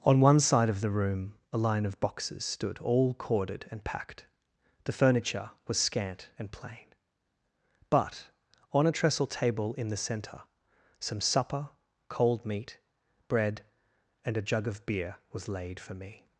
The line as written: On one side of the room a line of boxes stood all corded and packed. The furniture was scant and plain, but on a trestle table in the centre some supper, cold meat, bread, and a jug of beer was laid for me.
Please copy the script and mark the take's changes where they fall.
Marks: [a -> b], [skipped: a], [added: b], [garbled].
On one side of the room a line of boxes stood all corded and packed. The furniture was scant and plain, but on a trestle table in the centre some supper, cold meat, bread, and a jug of beer was laid for me.